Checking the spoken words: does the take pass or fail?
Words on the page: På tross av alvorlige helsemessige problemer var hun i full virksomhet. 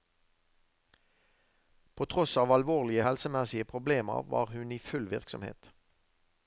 pass